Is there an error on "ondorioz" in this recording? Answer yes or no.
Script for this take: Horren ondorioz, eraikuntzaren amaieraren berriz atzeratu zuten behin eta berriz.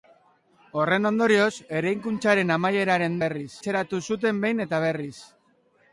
no